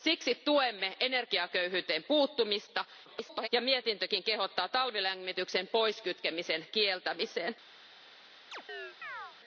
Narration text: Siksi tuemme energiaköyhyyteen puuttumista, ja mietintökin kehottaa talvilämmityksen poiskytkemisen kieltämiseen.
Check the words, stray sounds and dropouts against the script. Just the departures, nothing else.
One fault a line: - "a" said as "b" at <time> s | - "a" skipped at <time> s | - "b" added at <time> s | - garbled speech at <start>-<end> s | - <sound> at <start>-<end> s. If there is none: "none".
- garbled speech at 3.1-3.5 s
- chirp at 8.5-9.4 s